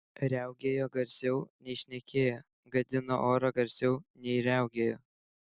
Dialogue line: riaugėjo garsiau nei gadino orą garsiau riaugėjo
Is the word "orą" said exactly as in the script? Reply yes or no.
yes